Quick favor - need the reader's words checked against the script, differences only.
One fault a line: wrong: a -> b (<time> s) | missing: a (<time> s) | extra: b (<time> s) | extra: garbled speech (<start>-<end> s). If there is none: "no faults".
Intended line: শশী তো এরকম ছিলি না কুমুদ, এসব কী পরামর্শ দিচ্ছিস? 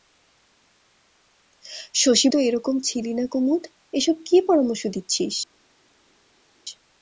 no faults